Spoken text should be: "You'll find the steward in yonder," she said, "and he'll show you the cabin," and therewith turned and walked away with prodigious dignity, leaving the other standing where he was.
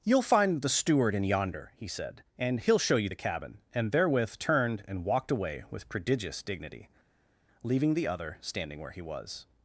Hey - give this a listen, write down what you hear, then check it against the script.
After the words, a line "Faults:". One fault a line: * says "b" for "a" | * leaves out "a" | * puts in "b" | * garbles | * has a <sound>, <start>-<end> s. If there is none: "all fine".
"You'll find the steward in yonder," he said, "and he'll show you the cabin," and therewith turned and walked away with prodigious dignity, leaving the other standing where he was.
Faults:
* says "he" for "she"